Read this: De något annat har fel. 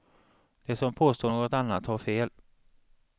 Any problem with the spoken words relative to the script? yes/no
yes